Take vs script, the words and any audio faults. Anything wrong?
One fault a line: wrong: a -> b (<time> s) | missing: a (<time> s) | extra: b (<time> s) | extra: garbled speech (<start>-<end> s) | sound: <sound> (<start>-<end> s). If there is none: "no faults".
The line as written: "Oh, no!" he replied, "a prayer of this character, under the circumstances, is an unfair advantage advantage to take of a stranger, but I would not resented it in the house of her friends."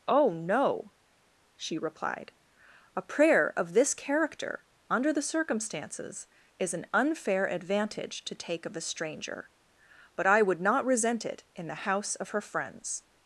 wrong: he -> she (1.6 s)
missing: advantage (8.3 s)
wrong: resented -> resent (10.8 s)